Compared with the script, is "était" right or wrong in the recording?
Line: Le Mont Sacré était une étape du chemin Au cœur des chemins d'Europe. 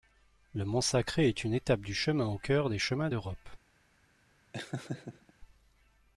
wrong